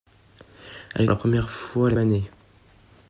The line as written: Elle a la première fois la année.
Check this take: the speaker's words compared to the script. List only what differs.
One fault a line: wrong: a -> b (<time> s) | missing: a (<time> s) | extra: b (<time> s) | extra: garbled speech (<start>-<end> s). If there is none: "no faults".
no faults